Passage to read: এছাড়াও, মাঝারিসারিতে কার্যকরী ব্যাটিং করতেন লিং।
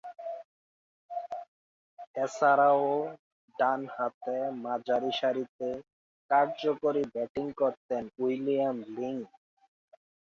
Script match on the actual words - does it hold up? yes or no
no